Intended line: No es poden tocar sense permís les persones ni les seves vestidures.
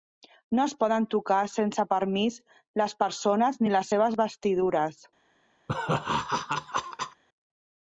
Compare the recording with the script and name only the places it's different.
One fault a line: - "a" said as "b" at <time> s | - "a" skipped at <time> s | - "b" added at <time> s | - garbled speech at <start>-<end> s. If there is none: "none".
none